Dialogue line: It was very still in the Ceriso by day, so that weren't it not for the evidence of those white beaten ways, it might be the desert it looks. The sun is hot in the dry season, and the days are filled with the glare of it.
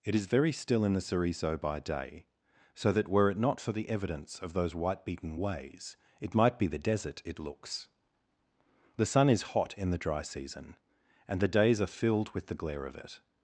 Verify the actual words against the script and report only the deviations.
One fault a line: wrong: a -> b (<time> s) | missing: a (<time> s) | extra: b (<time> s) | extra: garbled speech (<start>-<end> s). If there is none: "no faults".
wrong: was -> is (0.1 s)
wrong: weren't -> were (3.1 s)